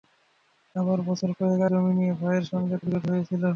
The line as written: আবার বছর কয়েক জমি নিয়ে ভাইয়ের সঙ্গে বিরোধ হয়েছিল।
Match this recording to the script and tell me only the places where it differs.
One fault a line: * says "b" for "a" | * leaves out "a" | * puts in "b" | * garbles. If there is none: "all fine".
all fine